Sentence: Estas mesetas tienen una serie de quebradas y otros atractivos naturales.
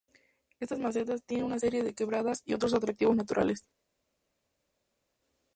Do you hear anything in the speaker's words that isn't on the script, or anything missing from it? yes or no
no